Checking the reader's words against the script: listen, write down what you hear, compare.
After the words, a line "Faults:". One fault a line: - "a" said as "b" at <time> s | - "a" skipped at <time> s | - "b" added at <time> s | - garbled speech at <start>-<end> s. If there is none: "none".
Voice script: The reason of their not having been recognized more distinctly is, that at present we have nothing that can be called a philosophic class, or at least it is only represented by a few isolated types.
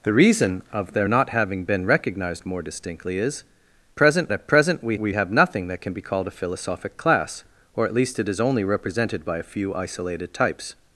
The reason of their not having been recognized more distinctly is, present at present we we have nothing that can be called a philosophic class, or at least it is only represented by a few isolated types.
Faults:
- "that" said as "present" at 4.0 s
- "we" added at 5.0 s